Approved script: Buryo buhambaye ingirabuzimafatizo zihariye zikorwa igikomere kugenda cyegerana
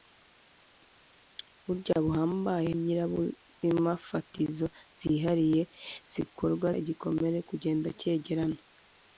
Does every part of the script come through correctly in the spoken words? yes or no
yes